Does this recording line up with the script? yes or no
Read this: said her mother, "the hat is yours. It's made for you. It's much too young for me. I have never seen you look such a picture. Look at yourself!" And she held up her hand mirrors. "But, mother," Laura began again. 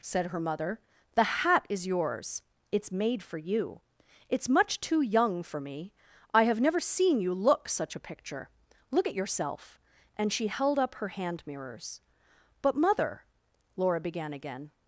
yes